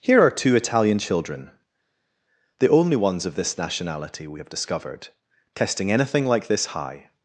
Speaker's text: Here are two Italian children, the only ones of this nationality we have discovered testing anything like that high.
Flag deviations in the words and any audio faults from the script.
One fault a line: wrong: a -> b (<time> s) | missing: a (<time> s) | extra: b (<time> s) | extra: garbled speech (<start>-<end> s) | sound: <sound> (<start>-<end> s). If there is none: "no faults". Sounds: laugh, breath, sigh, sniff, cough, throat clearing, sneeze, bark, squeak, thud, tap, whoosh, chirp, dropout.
wrong: that -> this (6.5 s)